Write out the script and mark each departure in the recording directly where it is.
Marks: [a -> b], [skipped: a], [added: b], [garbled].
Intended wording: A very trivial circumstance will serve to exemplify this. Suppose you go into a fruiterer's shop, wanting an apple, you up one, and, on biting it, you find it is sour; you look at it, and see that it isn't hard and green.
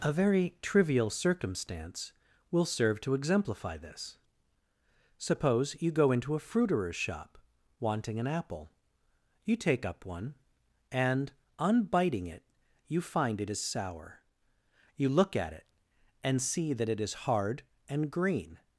A very trivial circumstance will serve to exemplify this. Suppose you go into a fruiterer's shop, wanting an apple, you [added: take] up one, and, on biting it, you find it is sour; you look at it, and see that it [isn't -> is] hard and green.